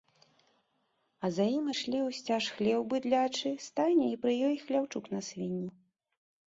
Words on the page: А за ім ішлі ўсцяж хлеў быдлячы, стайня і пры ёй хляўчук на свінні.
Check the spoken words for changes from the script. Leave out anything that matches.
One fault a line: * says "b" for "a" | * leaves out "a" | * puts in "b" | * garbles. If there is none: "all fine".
all fine